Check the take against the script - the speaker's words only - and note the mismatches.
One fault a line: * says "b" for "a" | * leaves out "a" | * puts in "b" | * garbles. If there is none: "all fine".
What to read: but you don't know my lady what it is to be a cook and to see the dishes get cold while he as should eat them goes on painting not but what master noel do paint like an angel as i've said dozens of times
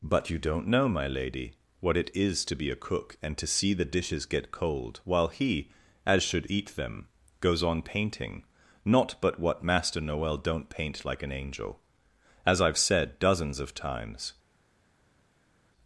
* says "don't" for "do"